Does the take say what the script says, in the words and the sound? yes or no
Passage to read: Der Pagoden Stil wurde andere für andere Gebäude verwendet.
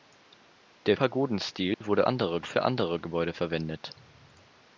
no